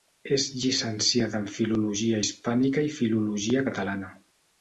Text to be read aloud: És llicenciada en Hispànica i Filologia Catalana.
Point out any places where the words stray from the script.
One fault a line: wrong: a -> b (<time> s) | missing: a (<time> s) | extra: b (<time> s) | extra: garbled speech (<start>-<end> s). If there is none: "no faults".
extra: Filologia (1.6 s)